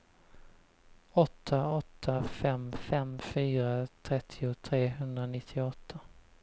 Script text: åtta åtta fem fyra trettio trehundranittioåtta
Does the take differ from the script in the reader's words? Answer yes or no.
yes